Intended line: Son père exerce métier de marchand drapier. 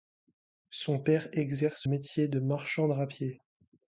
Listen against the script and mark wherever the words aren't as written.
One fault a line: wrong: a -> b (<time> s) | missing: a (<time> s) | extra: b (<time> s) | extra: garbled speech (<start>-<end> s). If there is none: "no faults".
no faults